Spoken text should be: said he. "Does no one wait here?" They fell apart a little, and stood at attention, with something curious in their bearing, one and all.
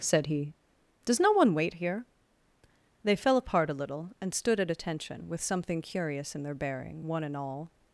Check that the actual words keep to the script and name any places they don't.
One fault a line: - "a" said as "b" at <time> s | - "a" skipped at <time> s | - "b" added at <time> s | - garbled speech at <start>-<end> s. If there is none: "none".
none